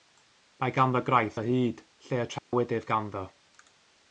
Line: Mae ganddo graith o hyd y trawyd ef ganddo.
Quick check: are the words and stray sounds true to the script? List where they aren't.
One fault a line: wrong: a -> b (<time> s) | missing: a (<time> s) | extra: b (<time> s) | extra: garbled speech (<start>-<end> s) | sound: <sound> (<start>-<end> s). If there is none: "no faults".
extra: lle (2.1 s)
sound: dropout (2.4-2.5 s)